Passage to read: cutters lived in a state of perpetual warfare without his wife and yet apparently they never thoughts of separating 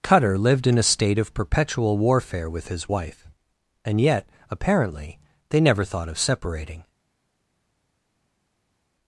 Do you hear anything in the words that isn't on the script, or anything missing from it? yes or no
yes